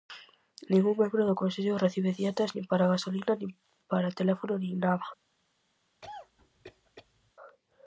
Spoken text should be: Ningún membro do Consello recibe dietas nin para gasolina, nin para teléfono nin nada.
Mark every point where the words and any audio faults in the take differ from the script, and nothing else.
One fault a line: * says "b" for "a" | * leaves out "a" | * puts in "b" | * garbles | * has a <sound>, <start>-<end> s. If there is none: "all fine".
* has a cough, 6.0-7.3 s